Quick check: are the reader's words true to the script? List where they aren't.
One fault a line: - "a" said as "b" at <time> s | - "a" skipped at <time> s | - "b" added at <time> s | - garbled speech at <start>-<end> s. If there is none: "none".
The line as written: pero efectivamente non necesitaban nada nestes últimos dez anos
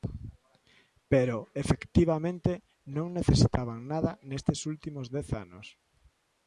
none